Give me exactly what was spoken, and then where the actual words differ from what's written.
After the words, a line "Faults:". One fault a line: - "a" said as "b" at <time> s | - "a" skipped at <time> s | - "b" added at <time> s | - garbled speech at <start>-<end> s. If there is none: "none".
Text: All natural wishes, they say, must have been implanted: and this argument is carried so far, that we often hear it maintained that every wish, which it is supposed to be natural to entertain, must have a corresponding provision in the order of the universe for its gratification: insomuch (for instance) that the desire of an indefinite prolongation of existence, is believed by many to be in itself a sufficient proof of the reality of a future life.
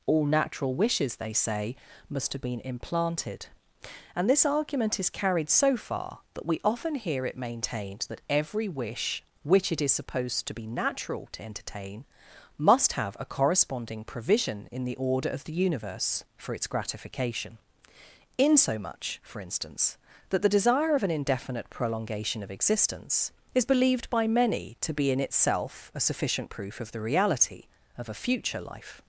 All natural wishes, they say, must have been implanted: and this argument is carried so far, that we often hear it maintained that every wish, which it is supposed to be natural to entertain, must have a corresponding provision in the order of the universe for its gratification: insomuch (for instance) that the desire of an indefinite prolongation of existence, is believed by many to be in itself a sufficient proof of the reality of a future life.
Faults:
none